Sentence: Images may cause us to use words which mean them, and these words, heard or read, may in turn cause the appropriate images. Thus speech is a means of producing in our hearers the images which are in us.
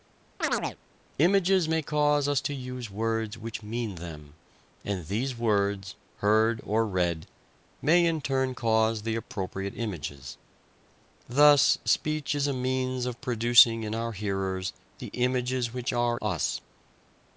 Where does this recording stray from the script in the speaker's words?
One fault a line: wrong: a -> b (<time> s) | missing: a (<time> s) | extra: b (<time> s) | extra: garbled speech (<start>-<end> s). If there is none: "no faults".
missing: in (16.2 s)